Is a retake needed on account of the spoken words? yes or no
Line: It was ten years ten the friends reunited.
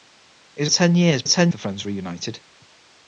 no